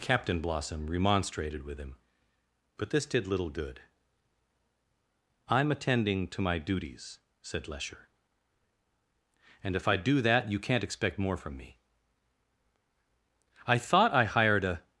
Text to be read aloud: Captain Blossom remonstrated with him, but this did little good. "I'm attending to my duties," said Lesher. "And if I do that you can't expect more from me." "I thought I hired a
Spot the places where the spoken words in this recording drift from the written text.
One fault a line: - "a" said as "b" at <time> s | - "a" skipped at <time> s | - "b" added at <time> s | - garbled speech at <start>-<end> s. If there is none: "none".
none